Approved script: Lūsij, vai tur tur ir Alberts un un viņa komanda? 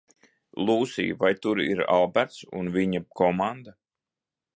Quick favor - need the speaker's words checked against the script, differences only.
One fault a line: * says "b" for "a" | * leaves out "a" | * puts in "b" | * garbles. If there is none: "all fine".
* leaves out "tur"
* leaves out "un"